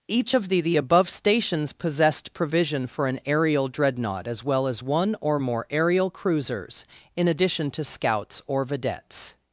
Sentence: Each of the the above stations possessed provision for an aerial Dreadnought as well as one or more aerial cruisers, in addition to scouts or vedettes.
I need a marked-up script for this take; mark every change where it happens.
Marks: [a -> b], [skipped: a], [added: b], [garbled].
Each of the the above stations possessed provision for an aerial Dreadnought as well as one or more aerial cruisers, in addition to scouts or vedettes.